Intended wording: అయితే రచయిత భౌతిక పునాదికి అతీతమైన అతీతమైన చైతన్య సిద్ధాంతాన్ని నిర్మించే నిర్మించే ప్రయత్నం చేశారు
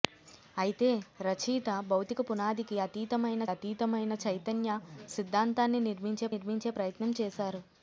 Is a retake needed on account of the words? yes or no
no